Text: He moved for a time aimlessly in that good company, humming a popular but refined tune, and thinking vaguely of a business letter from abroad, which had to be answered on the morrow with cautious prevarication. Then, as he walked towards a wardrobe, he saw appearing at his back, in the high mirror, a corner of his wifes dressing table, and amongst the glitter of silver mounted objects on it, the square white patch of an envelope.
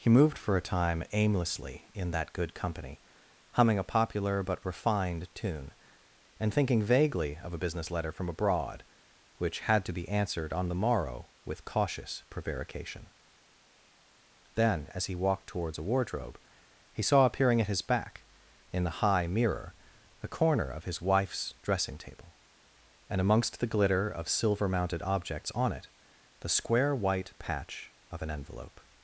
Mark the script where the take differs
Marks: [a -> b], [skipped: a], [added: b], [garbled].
He moved for a time aimlessly in that good company, humming a popular but refined tune, and thinking vaguely of a business letter from abroad, which had to be answered on the morrow with cautious prevarication. Then, as he walked towards a wardrobe, he saw appearing at his back, in the high mirror, a corner of his wifes dressing table, and amongst the glitter of silver mounted objects on it, the square white patch of an envelope.